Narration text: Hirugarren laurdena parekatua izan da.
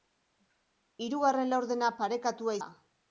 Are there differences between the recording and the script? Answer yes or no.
yes